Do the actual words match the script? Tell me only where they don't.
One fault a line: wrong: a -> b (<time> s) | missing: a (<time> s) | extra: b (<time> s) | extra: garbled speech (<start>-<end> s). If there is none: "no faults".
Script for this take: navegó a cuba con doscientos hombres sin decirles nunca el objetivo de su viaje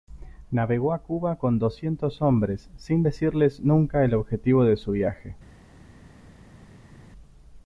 no faults